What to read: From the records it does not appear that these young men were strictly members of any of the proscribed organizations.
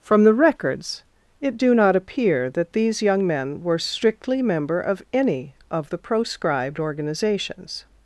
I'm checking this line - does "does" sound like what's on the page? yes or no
no